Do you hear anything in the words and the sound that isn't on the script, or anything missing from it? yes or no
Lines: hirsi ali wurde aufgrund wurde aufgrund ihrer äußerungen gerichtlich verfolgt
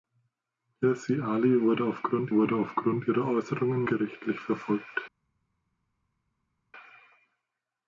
no